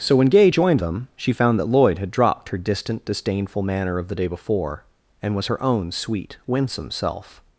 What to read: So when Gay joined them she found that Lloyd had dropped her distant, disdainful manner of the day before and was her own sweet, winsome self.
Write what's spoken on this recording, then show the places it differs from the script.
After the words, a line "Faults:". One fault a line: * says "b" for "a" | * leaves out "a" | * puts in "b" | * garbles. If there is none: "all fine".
So when Gay joined them she found that Lloyd had dropped her distant, disdainful manner of the day before and was her own sweet, winsome self.
Faults:
all fine